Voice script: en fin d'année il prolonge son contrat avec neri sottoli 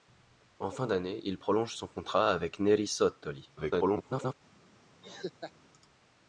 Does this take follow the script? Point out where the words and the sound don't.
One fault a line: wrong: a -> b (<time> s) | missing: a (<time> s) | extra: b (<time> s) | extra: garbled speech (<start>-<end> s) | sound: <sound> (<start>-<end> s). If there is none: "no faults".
extra: garbled speech (3.6-4.3 s)
sound: laugh (5.0-5.5 s)